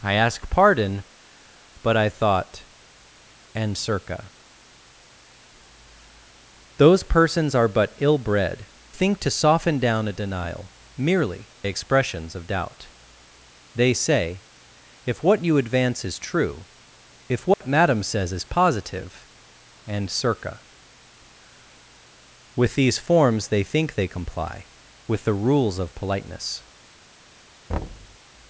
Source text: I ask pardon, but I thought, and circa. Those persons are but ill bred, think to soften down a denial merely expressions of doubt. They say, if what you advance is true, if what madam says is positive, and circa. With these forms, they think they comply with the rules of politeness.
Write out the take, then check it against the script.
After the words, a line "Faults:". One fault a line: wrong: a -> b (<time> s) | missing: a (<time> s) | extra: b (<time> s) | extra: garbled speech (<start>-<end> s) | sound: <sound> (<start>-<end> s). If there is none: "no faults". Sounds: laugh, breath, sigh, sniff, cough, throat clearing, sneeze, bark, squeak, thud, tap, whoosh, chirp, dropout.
I ask pardon, but I thought, and circa. Those persons are but ill bred, think to soften down a denial merely expressions of doubt. They say, if what you advance is true, if what madam says is positive, and circa. With these forms, they think they comply with the rules of politeness.
Faults:
sound: dropout (17.5-17.6 s)
sound: thud (27.7-28.2 s)